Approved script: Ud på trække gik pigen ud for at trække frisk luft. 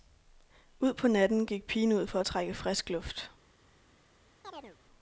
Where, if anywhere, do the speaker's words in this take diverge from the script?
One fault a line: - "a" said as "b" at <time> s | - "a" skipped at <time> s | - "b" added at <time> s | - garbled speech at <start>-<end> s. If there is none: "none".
- "trække" said as "natten" at 1.1 s